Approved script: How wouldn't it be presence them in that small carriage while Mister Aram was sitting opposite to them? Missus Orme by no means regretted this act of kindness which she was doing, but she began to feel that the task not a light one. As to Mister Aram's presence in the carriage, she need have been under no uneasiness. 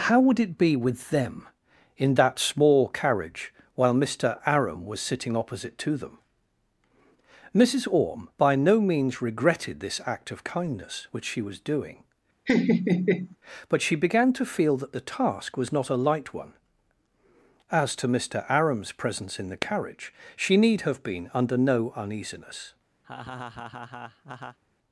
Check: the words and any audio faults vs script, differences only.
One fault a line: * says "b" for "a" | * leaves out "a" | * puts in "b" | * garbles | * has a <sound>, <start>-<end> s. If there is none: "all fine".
* says "would" for "wouldn't"
* says "with" for "presence"
* has a laugh, 12.5-13.4 s
* puts in "was"
* has a laugh, 23.0-24.6 s